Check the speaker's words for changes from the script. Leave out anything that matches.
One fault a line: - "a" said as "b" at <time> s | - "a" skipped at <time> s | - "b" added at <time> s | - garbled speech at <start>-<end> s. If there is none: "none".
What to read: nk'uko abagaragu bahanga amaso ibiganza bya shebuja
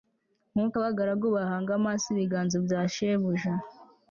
none